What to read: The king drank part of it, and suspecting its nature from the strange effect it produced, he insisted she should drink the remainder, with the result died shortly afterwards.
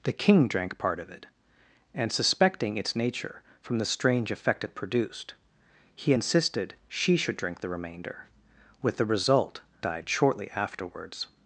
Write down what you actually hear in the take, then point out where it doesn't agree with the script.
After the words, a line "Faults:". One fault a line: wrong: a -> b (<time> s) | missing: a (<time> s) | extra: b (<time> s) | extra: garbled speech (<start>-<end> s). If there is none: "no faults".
The king drank part of it, and suspecting its nature from the strange effect it produced, he insisted she should drink the remainder, with the result died shortly afterwards.
Faults:
no faults